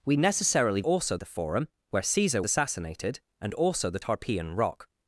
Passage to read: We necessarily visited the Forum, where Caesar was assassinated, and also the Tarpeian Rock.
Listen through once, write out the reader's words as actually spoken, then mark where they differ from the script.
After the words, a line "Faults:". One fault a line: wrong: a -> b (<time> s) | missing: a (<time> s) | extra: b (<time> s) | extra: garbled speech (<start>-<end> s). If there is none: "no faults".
We necessarily also the Forum, where Caesar assassinated, and also the Tarpeian Rock.
Faults:
wrong: visited -> also (0.8 s)
missing: was (2.4 s)